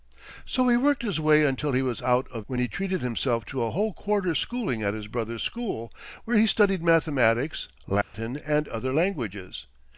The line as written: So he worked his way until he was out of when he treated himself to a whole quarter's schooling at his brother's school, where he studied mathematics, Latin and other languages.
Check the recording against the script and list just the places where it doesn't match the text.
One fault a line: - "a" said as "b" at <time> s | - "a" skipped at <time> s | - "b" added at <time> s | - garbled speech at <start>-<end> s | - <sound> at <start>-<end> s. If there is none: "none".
- dropout at 8.0-8.1 s